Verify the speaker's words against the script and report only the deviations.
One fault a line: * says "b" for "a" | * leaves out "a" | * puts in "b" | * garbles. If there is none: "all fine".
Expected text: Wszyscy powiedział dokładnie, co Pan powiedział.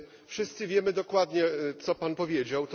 * says "wiemy" for "powiedział"